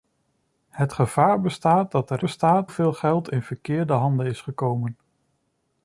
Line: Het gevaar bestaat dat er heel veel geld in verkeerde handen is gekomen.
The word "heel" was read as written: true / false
false